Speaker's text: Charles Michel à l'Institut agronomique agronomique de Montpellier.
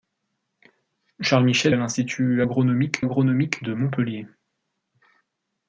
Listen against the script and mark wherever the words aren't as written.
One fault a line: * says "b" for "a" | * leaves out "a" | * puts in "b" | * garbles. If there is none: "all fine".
all fine